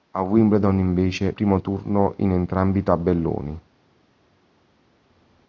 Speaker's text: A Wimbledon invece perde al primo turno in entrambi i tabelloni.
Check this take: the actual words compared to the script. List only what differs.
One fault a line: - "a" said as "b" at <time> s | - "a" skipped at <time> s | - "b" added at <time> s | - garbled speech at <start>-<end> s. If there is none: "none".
- "perde al" skipped at 1.3 s